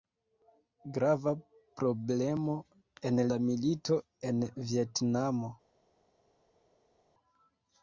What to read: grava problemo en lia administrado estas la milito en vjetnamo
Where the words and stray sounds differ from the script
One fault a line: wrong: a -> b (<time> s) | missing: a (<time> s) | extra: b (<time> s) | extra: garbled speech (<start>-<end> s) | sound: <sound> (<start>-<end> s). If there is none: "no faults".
missing: lia administrado estas (3.2 s)